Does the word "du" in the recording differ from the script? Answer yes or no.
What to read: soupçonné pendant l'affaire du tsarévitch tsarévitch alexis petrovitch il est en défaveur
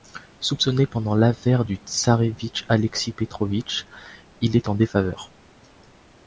no